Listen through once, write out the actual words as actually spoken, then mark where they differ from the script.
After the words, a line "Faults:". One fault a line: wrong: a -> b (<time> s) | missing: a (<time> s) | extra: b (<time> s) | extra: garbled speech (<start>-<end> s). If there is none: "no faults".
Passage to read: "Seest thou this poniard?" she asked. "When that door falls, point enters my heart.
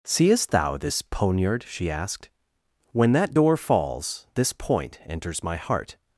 "Seest thou this poniard?" she asked. "When that door falls, this point enters my heart.
Faults:
extra: this (4.3 s)